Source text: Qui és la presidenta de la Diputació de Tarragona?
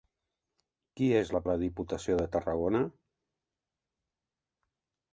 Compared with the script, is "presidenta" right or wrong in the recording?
wrong